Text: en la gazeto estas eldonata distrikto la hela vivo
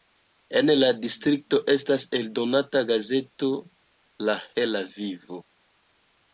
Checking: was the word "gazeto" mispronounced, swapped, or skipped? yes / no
yes